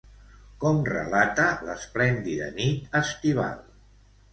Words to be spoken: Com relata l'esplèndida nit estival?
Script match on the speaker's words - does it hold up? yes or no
yes